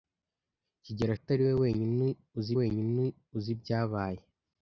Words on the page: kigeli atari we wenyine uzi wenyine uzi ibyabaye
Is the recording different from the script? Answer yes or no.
no